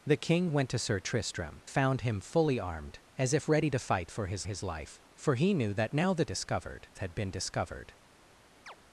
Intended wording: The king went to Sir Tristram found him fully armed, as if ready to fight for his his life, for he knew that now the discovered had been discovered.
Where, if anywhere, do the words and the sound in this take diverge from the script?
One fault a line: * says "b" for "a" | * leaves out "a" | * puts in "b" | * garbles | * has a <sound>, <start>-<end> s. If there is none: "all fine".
* has a chirp, 8.7-8.8 s